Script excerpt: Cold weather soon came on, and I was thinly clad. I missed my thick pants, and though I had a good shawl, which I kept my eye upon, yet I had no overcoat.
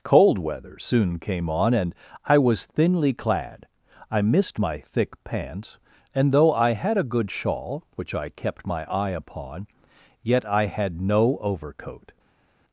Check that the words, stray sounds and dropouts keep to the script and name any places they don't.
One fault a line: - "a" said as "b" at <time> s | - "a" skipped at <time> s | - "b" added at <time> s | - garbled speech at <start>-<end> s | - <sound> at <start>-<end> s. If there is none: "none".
none